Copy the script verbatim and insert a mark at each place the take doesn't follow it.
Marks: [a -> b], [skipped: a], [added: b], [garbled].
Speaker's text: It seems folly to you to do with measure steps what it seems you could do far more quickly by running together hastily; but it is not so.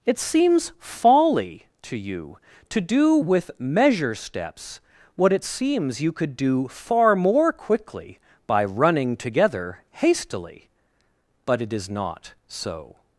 It seems folly to you to do with measure steps what it seems you could do far more quickly by running together hastily; but it is not so.